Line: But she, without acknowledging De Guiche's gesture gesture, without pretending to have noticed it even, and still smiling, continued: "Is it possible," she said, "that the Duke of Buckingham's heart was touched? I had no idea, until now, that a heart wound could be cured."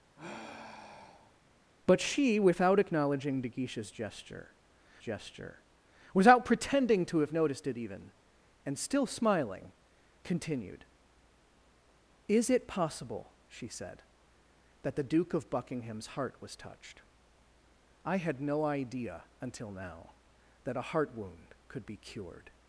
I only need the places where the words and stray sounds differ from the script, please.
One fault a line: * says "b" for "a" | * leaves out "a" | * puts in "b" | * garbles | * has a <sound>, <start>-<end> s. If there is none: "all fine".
* has a sigh, 0.2-1.4 s